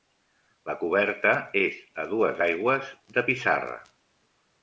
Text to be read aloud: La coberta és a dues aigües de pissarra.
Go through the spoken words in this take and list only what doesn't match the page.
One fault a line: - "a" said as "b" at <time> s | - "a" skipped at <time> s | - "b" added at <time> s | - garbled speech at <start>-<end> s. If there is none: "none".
none